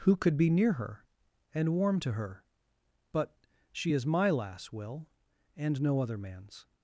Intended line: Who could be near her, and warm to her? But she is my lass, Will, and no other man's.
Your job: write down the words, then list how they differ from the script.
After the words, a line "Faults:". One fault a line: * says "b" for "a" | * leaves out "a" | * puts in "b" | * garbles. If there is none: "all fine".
Who could be near her, and warm to her? But she is my lass, Will, and no other man's.
Faults:
all fine